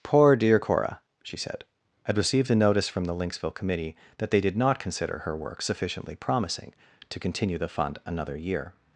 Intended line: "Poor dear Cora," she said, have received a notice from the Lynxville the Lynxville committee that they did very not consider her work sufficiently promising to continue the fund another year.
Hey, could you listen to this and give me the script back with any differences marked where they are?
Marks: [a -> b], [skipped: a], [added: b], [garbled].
"Poor dear Cora," she said, [have -> had] received a notice from the Lynxville [skipped: the Lynxville] committee that they did [skipped: very] not consider her work sufficiently promising to continue the fund another year.